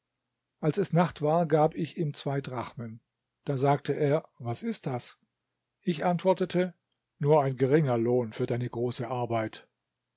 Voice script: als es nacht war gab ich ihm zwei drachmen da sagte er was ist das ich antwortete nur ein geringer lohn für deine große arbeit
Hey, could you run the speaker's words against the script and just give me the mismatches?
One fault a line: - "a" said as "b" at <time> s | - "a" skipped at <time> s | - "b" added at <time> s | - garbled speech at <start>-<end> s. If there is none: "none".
none